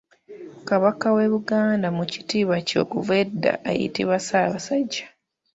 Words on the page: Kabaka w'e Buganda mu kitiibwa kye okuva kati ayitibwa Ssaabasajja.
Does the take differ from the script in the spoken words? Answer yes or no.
yes